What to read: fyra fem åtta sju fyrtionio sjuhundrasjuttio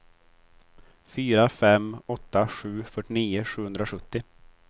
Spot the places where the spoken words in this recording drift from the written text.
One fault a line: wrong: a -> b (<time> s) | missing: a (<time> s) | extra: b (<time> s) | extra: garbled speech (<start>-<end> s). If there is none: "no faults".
no faults